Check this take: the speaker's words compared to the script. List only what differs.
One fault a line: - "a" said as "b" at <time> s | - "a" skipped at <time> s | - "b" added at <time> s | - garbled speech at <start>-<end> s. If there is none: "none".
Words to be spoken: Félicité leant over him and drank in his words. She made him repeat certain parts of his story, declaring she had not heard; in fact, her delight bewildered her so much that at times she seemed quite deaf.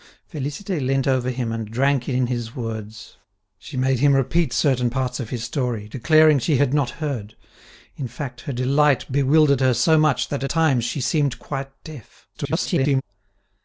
- "at" skipped at 10.4 s
- garbled speech at 12.3-13.0 s